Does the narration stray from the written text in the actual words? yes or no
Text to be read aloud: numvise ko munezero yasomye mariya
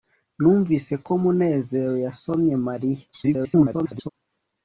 yes